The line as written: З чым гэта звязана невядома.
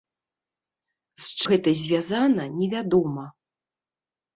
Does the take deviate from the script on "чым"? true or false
true